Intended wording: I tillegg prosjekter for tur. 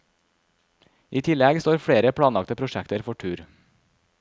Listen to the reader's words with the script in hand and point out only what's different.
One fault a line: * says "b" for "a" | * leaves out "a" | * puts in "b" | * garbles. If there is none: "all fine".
* puts in "står flere planlagte"